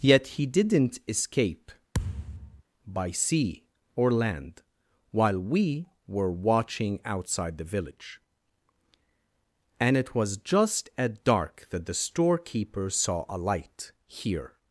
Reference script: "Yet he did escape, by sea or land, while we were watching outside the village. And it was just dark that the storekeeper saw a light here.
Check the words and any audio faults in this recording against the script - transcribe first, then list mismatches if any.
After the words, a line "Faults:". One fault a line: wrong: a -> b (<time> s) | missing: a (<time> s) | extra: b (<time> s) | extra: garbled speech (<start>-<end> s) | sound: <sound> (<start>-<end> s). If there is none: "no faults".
"Yet he didn't escape, by sea or land, while we were watching outside the village. And it was just at dark that the storekeeper saw a light here.
Faults:
wrong: did -> didn't (0.5 s)
sound: thud (1.9-2.6 s)
extra: at (11.0 s)